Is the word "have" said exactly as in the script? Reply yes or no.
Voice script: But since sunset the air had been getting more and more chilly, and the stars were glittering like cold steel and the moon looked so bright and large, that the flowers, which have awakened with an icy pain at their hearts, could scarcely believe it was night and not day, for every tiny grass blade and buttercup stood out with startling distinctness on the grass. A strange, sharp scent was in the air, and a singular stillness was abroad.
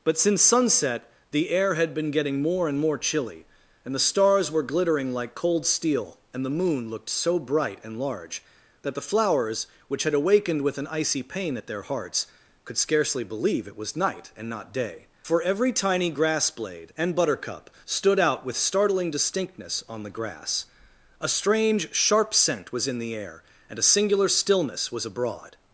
no